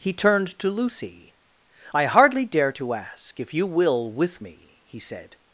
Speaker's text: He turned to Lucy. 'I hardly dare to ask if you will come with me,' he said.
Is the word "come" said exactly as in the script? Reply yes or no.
no